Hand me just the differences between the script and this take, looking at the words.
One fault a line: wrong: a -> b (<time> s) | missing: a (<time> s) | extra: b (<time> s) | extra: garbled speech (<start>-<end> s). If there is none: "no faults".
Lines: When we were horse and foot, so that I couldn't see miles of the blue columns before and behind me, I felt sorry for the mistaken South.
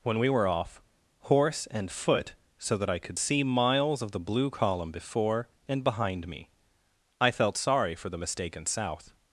extra: off (0.5 s)
wrong: couldn't -> could (3.0 s)
wrong: columns -> column (4.5 s)